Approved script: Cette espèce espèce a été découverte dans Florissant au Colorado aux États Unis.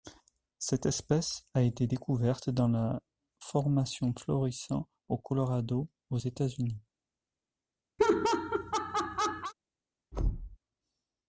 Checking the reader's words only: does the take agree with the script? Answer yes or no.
no